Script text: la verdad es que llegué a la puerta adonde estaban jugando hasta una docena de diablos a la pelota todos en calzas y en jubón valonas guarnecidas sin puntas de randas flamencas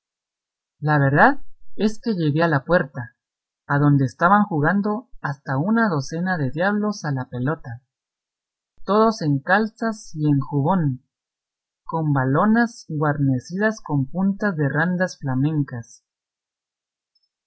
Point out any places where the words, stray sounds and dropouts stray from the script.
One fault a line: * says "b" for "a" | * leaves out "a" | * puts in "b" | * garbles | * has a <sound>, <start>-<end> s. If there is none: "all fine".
* puts in "con"
* says "con" for "sin"